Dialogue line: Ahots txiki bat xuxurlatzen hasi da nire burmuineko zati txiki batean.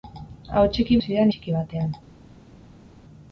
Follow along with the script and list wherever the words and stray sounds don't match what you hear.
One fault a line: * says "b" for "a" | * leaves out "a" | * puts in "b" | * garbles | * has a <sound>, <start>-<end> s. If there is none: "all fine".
* leaves out "bat xuxurlatzen"
* leaves out "nire burmuineko zati"